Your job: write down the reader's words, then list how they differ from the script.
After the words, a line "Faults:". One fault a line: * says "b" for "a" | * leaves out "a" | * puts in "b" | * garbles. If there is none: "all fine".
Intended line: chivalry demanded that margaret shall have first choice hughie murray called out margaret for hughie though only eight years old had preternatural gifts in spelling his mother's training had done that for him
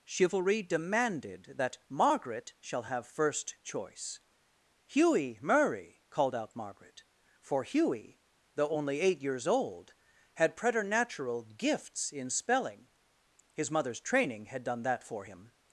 chivalry demanded that margaret shall have first choice hughie murray called out margaret for hughie though only eight years old had preternatural gifts in spelling his mother's training had done that for him
Faults:
all fine